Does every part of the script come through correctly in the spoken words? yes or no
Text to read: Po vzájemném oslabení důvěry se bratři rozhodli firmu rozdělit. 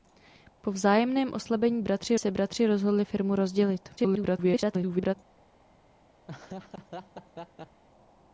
no